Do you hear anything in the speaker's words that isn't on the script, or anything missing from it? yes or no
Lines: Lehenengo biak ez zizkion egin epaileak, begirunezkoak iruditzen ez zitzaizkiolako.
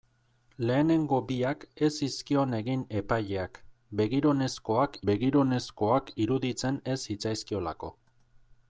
yes